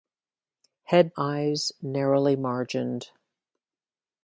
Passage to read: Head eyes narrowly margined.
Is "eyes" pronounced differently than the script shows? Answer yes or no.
no